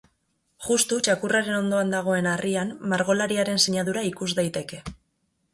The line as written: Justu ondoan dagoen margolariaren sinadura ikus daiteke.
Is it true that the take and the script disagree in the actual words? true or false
true